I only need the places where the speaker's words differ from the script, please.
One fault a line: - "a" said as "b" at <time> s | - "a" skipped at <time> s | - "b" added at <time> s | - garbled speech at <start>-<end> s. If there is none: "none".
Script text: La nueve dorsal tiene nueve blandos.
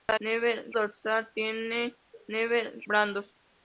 none